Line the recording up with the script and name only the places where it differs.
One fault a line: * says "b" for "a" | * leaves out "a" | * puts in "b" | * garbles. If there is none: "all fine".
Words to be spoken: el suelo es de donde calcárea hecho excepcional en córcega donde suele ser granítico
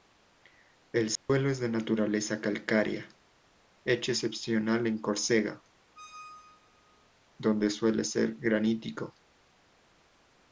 * says "naturaleza" for "donde"